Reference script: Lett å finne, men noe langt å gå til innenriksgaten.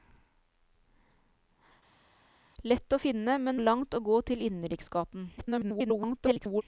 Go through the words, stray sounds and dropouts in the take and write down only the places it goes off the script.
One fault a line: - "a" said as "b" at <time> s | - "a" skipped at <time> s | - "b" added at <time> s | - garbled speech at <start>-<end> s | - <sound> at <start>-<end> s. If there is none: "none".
- "noe" skipped at 3.6 s
- garbled speech at 5.4-6.6 s